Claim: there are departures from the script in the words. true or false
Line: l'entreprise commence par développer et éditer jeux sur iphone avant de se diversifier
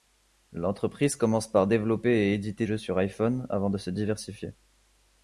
false